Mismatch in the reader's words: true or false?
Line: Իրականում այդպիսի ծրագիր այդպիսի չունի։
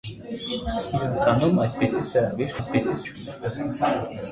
false